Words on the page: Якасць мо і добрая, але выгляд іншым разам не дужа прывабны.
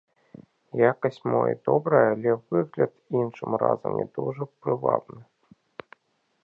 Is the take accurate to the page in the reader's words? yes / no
yes